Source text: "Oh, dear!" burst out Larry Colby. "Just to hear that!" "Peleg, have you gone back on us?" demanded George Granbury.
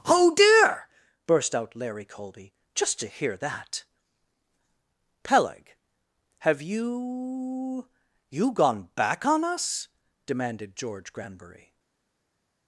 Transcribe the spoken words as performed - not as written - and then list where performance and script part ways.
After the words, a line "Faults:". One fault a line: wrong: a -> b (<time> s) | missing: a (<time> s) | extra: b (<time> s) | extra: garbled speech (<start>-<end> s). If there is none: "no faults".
"Oh, dear!" burst out Larry Colby. "Just to hear that!" "Peleg, have you you gone back on us?" demanded George Granbury.
Faults:
extra: you (8.3 s)